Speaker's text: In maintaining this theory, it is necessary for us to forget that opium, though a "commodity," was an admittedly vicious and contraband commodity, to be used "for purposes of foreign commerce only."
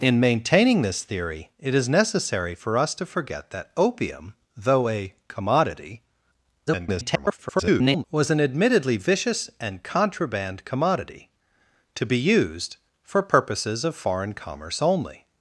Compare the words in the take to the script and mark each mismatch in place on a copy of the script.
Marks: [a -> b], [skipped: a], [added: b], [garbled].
In maintaining this theory, it is necessary for us to forget that opium, though a "commodity," [garbled] was an admittedly vicious and contraband commodity, to be used "for purposes of foreign commerce only."